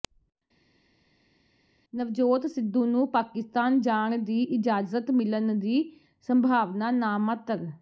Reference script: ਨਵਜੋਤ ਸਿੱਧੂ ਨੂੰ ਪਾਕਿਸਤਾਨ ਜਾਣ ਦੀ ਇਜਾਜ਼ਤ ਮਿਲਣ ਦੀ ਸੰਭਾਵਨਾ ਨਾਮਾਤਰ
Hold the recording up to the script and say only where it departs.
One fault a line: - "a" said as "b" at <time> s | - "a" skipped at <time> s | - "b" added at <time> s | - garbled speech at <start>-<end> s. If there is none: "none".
none